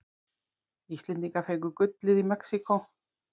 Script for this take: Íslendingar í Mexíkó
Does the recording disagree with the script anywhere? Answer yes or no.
yes